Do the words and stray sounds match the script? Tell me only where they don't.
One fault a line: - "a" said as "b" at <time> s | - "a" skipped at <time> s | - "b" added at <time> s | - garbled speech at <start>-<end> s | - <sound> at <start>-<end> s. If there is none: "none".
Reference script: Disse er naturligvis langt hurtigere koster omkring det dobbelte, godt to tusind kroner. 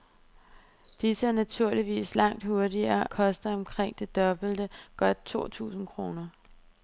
none